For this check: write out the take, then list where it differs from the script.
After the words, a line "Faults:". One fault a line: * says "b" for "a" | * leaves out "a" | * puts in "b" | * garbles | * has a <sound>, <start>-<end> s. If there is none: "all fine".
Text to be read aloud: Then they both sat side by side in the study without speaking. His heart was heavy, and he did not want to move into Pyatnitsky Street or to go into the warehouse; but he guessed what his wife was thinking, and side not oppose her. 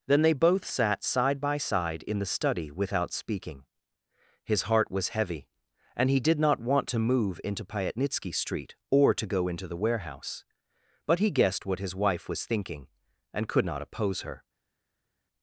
Then they both sat side by side in the study without speaking. His heart was heavy, and he did not want to move into Pyatnitsky Street or to go into the warehouse; but he guessed what his wife was thinking, and could not oppose her.
Faults:
* says "could" for "side"